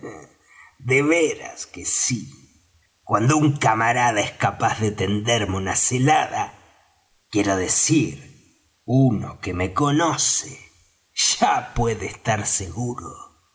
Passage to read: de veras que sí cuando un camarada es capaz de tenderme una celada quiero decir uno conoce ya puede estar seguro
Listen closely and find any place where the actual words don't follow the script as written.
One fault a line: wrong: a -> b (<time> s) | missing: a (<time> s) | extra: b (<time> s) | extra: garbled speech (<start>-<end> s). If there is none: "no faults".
extra: que me (9.4 s)